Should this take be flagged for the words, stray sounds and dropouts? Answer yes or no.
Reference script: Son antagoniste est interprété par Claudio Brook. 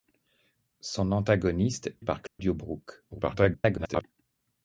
yes